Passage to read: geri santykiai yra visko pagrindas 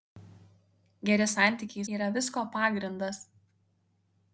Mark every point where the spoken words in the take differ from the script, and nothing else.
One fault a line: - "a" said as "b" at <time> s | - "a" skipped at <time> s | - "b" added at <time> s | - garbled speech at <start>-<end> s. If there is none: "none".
none